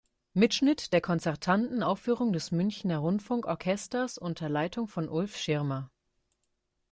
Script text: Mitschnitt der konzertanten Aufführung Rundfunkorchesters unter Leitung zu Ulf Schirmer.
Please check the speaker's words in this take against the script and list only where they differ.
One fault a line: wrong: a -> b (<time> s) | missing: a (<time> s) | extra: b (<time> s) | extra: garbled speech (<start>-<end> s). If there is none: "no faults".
extra: des Münchner (2.3 s)
wrong: zu -> von (4.9 s)